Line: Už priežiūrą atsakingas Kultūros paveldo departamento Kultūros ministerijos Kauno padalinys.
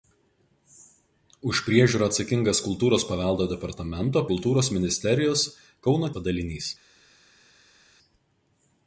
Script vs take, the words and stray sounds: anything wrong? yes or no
no